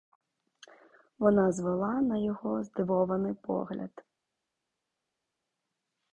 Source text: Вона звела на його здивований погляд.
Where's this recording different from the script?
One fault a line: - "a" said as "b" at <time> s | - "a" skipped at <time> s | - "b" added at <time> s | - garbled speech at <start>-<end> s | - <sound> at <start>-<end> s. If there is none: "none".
none